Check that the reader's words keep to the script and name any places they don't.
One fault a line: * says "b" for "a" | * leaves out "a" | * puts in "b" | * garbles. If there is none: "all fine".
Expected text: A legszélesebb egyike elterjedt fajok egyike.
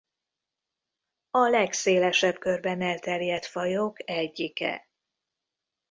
* says "körben" for "egyike"